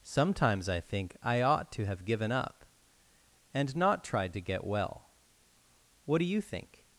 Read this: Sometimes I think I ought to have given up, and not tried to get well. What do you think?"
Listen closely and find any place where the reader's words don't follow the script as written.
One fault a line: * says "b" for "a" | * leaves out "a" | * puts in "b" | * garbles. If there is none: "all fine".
all fine